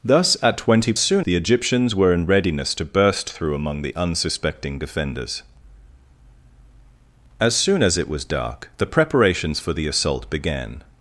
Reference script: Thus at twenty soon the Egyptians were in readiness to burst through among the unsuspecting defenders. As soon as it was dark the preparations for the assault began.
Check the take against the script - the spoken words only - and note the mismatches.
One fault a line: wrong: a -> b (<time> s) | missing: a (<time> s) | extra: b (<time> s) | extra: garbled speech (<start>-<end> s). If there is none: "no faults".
no faults